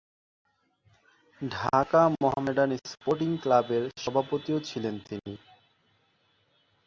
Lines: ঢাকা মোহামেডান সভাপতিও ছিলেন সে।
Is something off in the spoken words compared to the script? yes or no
yes